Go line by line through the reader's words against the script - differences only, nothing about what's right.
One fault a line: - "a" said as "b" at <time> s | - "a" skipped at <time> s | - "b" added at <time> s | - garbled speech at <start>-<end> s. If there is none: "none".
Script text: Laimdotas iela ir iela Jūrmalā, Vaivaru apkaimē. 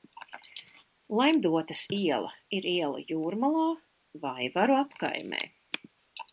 none